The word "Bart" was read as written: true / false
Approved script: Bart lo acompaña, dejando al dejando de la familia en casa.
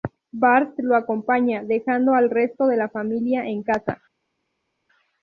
true